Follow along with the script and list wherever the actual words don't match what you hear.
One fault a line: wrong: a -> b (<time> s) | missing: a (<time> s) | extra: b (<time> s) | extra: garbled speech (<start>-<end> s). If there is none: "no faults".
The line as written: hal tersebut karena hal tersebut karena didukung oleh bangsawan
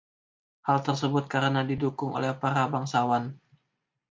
missing: hal tersebut karena (1.6 s)
extra: para (2.3 s)